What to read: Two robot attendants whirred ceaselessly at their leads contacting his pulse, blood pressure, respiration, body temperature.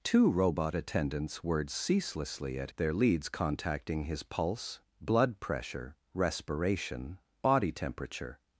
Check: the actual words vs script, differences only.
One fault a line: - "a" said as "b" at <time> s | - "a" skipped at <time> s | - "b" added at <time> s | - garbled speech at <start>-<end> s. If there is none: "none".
none